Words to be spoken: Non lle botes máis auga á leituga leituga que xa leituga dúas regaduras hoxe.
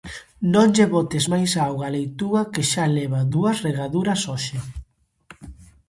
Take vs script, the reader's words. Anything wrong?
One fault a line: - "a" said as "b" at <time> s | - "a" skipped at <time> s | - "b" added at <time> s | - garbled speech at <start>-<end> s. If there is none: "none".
- "leituga" skipped at 2.4 s
- "leituga" said as "leva" at 3.0 s